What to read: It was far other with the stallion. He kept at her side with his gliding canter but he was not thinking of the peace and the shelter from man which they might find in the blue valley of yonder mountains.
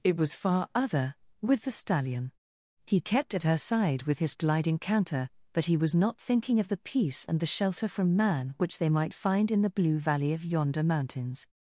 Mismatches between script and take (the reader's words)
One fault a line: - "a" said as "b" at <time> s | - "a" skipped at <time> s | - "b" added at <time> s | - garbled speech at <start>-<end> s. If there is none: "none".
none